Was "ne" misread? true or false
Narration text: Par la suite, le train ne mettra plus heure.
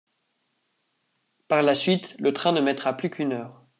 false